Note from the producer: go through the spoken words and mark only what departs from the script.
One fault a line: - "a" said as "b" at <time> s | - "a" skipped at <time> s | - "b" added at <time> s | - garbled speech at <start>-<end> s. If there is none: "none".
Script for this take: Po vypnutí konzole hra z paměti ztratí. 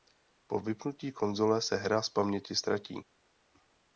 - "se" added at 1.6 s